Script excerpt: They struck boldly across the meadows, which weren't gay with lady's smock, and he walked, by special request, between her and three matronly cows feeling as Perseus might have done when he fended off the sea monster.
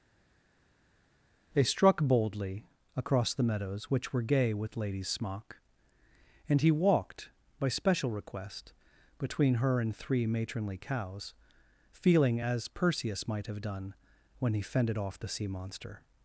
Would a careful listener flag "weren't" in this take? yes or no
yes